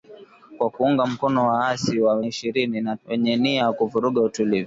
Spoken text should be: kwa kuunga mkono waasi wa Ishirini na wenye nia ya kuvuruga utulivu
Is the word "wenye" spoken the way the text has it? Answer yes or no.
yes